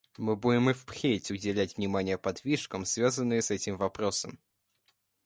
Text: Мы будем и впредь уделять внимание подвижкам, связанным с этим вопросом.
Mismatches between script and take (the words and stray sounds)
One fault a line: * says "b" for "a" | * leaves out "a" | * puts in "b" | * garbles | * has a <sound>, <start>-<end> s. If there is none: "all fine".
all fine